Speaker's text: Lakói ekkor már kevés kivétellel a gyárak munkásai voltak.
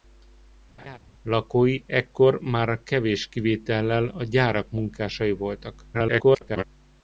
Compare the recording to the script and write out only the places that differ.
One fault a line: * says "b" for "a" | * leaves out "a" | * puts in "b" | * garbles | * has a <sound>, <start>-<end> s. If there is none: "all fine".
* has a laugh, 0.8-1.0 s
* garbles